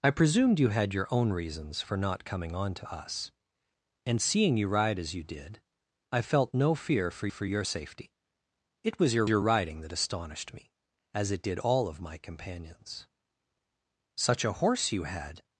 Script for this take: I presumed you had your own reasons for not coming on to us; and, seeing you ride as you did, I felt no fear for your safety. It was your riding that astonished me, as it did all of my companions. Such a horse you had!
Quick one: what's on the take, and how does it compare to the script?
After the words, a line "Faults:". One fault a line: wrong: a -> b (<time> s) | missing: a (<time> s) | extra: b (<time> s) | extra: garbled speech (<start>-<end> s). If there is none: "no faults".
I presumed you had your own reasons for not coming on to us; and, seeing you ride as you did, I felt no fear for for your safety. It was your your riding that astonished me, as it did all of my companions. Such a horse you had!
Faults:
extra: for (7.3 s)
extra: your (9.3 s)